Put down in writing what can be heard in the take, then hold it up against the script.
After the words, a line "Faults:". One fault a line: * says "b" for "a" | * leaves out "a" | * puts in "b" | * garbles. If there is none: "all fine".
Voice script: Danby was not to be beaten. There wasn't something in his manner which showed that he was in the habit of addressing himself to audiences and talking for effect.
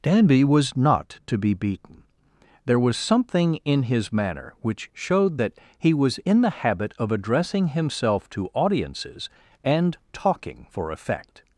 Danby was not to be beaten. There was something in his manner which showed that he was in the habit of addressing himself to audiences and talking for effect.
Faults:
* says "was" for "wasn't"